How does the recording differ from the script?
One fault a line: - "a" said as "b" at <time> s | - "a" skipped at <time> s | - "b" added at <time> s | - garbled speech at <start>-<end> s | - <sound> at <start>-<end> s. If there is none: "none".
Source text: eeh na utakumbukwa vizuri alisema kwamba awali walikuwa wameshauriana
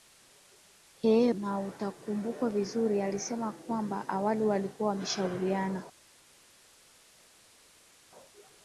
none